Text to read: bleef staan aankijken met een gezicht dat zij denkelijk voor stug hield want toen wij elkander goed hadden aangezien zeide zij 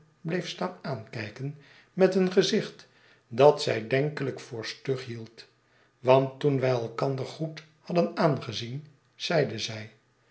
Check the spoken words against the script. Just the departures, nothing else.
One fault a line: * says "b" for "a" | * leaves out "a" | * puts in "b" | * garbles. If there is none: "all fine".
all fine